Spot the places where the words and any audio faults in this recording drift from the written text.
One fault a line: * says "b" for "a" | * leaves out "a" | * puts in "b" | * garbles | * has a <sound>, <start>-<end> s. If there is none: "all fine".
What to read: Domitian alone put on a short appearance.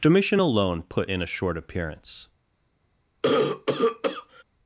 * says "in" for "on"
* has a cough, 3.2-4.4 s